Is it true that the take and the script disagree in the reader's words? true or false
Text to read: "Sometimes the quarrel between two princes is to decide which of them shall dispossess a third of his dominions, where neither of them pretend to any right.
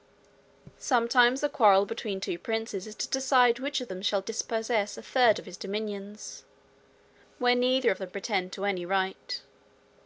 false